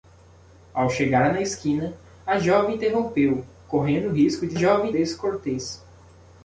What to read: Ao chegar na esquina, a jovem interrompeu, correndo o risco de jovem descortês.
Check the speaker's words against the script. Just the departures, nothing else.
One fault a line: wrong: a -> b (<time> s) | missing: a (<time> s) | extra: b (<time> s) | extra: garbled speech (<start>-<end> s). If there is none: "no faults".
no faults